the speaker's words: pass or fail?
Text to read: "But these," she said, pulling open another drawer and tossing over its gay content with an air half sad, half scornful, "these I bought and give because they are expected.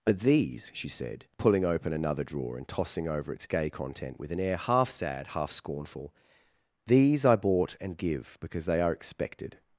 pass